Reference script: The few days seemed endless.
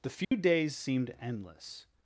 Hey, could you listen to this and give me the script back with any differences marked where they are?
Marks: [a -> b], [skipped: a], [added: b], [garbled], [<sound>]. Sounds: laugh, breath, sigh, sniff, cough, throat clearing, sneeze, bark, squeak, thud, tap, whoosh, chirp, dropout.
The few [dropout] days seemed endless.